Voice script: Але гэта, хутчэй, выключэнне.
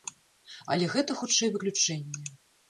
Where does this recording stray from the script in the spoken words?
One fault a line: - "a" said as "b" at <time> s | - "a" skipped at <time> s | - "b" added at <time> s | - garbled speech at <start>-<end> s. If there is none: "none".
none